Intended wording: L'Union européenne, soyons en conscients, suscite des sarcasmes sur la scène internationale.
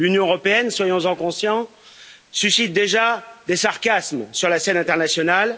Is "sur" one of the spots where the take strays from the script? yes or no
no